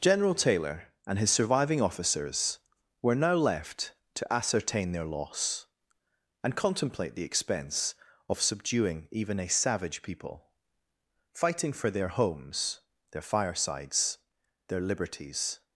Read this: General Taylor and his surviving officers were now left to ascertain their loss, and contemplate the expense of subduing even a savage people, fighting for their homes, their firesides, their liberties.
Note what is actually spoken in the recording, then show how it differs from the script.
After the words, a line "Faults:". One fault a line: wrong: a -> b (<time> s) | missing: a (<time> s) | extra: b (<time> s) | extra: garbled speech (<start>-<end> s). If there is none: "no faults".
General Taylor and his surviving officers were now left to ascertain their loss, and contemplate the expense of subduing even a savage people, fighting for their homes, their firesides, their liberties.
Faults:
no faults